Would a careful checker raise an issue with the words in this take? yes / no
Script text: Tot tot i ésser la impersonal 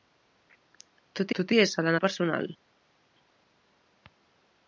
no